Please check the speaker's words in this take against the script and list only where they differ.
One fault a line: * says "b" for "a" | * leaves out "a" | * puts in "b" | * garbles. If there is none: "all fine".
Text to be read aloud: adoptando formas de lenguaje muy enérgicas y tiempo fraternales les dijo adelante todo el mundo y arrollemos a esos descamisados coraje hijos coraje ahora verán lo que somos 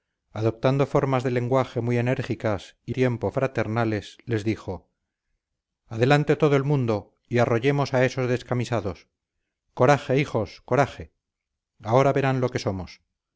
all fine